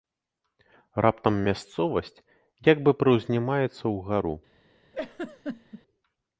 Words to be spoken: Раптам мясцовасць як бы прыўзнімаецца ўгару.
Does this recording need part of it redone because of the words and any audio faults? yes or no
yes